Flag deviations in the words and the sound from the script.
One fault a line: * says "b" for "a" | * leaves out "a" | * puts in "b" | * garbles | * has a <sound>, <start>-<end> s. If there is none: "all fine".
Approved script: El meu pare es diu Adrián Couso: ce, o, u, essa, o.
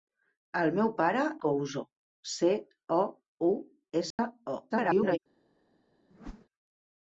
* leaves out "es diu Adrián"
* has a dropout, 4.1-4.2 s
* garbles
* has a whoosh, 6.1-6.5 s